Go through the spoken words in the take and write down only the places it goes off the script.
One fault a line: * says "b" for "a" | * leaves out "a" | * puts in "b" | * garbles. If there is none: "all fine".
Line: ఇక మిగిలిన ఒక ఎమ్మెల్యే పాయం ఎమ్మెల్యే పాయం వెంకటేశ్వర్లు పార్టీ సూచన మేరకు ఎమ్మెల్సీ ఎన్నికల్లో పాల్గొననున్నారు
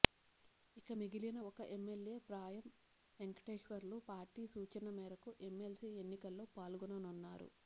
* leaves out "ఎమ్మెల్యే పాయం"